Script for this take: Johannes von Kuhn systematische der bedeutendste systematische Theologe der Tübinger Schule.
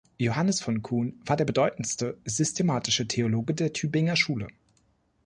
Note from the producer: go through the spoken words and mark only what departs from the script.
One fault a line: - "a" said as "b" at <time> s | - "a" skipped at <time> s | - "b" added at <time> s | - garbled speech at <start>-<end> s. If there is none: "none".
- "systematische" said as "war" at 1.2 s